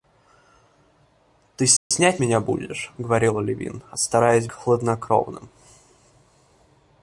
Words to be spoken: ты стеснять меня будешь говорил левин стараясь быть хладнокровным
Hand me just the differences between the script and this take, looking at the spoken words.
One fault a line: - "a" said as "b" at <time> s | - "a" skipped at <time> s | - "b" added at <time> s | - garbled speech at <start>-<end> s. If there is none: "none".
- "быть" skipped at 4.5 s